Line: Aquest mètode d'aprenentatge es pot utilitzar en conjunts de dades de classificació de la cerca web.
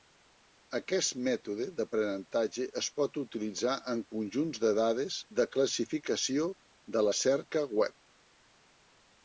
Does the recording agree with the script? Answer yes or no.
yes